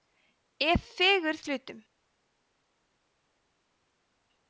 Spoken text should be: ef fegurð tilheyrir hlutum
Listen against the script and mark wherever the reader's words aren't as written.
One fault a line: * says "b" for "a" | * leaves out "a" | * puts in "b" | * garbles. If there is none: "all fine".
* leaves out "tilheyrir"